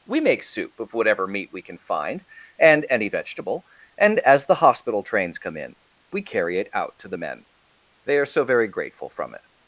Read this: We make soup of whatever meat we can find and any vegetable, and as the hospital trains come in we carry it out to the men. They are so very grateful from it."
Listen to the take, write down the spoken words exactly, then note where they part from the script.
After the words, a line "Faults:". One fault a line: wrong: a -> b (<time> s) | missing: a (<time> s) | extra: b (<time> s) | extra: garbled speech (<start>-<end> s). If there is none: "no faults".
We make soup of whatever meat we can find and any vegetable, and as the hospital trains come in we carry it out to the men. They are so very grateful from it."
Faults:
no faults